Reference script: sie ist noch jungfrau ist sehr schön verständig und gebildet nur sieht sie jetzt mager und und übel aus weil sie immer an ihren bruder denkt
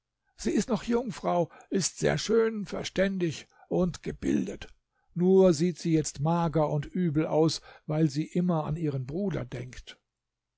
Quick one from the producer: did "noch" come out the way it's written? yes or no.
yes